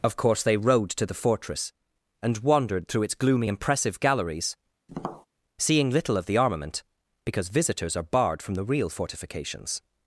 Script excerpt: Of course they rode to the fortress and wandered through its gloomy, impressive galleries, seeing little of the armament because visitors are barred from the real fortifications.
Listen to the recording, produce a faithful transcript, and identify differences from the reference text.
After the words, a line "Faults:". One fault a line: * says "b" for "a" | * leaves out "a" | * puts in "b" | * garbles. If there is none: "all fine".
Of course they rode to the fortress and wandered through its gloomy, impressive galleries, seeing little of the armament because visitors are barred from the real fortifications.
Faults:
all fine